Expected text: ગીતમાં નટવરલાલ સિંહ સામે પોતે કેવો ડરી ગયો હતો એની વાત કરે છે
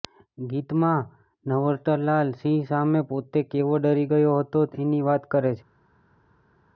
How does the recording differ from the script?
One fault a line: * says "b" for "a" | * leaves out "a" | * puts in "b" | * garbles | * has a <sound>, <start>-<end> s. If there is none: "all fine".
all fine